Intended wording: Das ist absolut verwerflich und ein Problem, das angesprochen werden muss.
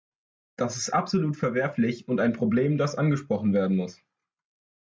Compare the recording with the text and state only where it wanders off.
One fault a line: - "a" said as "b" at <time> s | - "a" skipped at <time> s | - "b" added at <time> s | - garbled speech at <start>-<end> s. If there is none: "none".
none